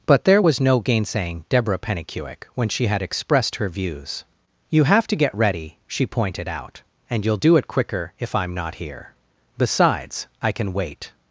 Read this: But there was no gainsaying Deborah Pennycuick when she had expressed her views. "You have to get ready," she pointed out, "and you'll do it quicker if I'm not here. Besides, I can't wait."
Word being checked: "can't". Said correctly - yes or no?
no